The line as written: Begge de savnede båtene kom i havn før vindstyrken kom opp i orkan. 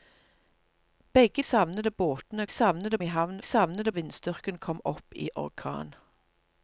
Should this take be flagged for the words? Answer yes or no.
yes